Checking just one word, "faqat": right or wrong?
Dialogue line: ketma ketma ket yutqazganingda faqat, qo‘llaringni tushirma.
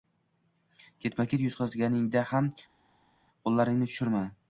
wrong